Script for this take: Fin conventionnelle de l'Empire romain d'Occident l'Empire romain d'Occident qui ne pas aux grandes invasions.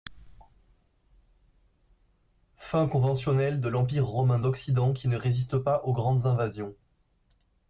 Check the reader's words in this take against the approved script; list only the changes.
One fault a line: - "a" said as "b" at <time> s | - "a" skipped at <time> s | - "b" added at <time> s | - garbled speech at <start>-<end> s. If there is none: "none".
- "l'Empire romain d'Occident" skipped at 4.9 s
- "résiste" added at 5.2 s